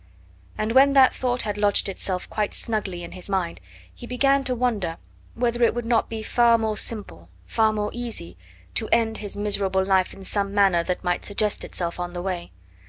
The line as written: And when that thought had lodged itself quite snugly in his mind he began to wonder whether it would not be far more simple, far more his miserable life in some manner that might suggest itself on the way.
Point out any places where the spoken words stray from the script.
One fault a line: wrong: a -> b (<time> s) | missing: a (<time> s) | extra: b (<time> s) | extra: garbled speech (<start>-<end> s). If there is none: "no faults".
extra: easy to end (7.9 s)